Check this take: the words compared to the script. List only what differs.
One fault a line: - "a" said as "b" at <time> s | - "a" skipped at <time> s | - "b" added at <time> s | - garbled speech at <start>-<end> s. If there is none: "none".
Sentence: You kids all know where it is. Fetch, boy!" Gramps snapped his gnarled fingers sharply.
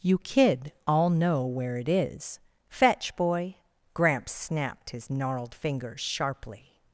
- "kids" said as "kid" at 0.2 s